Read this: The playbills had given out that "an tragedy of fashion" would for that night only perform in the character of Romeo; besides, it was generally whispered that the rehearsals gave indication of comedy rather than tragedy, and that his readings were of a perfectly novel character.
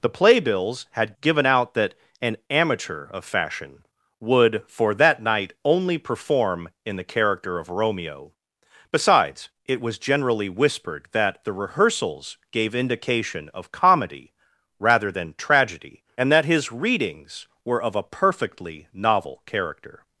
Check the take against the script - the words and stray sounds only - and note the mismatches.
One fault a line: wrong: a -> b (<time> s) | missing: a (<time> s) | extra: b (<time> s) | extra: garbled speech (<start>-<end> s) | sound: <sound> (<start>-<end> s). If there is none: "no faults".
wrong: tragedy -> amateur (2.5 s)